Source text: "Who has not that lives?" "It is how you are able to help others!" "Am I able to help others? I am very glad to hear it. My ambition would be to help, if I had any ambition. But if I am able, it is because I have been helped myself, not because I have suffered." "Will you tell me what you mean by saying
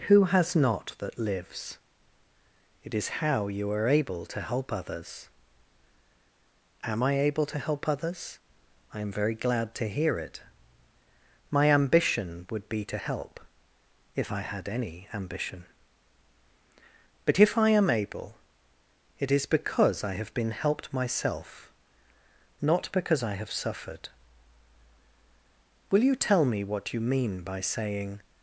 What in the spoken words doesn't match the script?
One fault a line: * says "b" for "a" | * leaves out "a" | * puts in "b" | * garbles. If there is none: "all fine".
all fine